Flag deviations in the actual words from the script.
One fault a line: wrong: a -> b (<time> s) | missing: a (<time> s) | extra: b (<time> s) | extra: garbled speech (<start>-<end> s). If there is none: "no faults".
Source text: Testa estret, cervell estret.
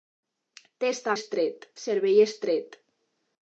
no faults